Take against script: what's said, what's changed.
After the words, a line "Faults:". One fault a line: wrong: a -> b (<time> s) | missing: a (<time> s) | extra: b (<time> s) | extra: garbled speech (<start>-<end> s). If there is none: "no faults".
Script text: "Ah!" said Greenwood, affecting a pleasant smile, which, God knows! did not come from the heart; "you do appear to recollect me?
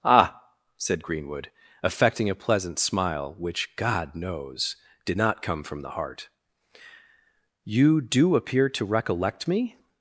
"Ah!" said Greenwood, affecting a pleasant smile, which, God knows! did not come from the heart; "you do appear to recollect me?
Faults:
no faults